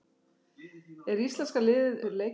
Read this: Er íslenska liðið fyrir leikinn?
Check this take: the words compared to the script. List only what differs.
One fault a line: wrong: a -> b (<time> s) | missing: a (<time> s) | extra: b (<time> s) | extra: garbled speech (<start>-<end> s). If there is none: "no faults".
no faults